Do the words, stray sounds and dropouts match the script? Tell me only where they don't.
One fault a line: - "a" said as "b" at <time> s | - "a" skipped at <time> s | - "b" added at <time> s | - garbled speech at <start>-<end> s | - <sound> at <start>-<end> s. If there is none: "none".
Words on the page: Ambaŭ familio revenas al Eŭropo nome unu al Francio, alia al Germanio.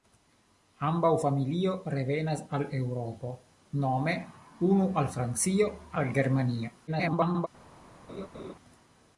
- "alia" skipped at 5.7 s
- garbled speech at 6.9-7.5 s
- laugh at 8.1-8.5 s